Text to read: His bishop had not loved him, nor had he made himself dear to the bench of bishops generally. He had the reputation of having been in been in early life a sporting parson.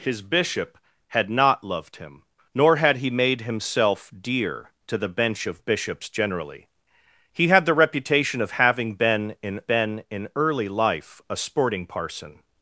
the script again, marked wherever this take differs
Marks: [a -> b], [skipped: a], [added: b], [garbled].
His bishop had not loved him, nor had he made himself dear to the bench of bishops generally. He had the reputation of having been in been in early life a sporting parson.